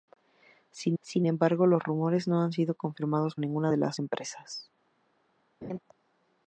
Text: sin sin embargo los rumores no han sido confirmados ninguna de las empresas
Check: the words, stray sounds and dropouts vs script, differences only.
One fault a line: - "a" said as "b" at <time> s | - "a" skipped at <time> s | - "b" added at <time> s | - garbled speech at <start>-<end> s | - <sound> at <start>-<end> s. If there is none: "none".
- laugh at 5.6-5.8 s